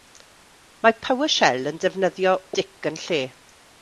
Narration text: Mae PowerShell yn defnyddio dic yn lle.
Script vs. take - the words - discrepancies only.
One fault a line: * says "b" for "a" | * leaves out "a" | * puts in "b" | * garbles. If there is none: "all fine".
all fine